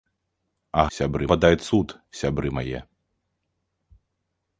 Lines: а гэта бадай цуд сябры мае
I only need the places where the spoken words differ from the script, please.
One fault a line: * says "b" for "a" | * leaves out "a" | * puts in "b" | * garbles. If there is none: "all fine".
* says "сябры" for "гэта"